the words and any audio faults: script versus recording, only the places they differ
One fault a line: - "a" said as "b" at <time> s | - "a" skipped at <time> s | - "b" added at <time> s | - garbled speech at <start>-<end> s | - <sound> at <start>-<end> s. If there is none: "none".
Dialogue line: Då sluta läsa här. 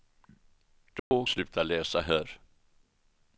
- dropout at 1.0-1.1 s